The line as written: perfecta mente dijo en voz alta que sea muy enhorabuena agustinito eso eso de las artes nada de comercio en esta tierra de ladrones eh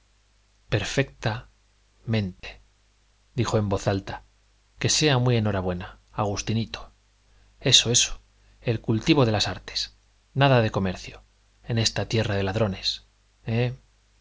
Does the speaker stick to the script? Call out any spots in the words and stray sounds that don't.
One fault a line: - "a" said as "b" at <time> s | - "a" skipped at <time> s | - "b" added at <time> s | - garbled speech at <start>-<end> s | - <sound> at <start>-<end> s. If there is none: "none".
- dropout at 2.4-2.4 s
- "el cultivo" added at 8.6 s